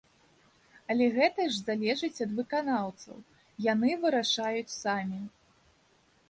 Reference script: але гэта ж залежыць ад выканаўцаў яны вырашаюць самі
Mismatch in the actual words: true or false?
false